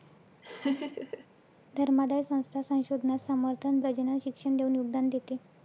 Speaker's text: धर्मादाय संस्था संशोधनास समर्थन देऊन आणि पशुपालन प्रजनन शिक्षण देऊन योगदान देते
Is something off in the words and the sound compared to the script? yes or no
yes